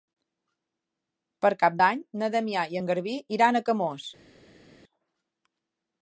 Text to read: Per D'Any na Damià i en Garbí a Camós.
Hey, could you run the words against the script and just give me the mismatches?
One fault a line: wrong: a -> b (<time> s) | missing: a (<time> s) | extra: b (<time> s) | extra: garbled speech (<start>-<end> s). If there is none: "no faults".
extra: Cap (1.6 s)
extra: iran (3.4 s)